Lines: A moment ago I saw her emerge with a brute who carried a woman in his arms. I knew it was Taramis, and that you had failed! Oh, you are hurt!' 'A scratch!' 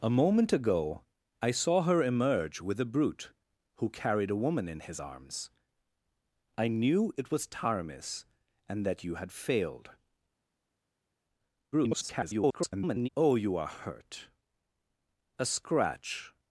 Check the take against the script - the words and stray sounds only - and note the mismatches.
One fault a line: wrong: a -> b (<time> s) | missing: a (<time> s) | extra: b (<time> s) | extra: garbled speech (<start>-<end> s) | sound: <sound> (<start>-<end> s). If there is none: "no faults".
extra: garbled speech (11.7-13.1 s)